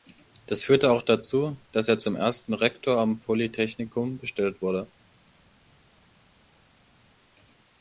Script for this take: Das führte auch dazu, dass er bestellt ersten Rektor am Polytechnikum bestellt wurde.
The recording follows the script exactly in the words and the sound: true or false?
false